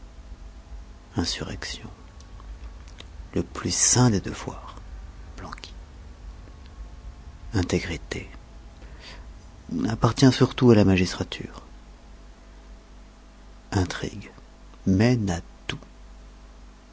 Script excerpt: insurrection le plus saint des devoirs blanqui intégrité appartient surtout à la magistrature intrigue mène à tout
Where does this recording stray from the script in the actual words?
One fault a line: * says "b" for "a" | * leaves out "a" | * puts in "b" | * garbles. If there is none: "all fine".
all fine